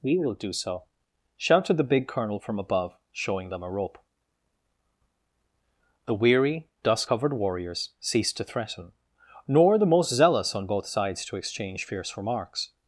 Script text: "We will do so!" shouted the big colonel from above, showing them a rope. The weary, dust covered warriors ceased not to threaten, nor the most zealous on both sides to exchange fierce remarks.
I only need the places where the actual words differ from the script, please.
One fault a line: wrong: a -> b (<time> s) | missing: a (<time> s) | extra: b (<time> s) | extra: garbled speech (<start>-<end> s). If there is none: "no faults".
missing: not (8.4 s)